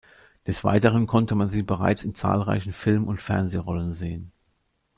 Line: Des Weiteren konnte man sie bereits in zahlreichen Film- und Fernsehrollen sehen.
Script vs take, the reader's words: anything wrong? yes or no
no